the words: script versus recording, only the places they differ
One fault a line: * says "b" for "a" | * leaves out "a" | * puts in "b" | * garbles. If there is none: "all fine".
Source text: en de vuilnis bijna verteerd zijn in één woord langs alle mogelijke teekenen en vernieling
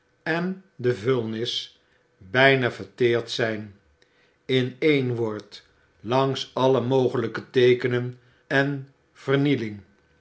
all fine